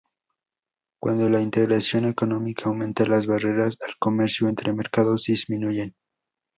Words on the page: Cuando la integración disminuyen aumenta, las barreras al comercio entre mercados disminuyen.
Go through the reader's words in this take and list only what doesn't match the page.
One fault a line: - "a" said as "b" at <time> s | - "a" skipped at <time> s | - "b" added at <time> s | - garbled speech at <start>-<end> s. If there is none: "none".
- "disminuyen" said as "económica" at 2.0 s